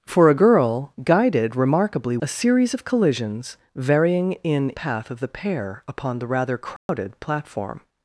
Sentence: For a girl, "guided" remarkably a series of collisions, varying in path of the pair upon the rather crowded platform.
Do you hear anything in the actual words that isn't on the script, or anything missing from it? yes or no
no